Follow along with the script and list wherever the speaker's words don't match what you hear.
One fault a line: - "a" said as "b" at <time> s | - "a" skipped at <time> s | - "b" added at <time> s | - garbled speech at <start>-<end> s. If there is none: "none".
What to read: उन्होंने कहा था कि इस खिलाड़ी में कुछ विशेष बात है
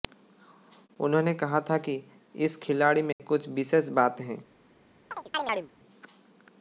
none